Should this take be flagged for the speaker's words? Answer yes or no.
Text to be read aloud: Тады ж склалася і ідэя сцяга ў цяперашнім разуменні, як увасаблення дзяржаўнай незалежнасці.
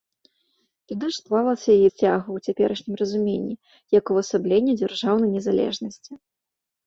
yes